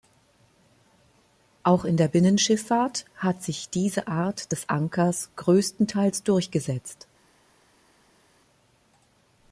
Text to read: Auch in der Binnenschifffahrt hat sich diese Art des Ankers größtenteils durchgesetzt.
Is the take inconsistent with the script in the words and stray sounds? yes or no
no